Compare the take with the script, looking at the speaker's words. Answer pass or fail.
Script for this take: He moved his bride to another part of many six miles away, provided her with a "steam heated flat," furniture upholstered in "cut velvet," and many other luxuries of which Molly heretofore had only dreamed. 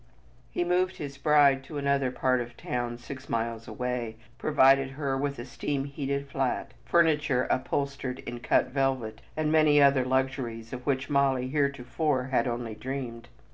fail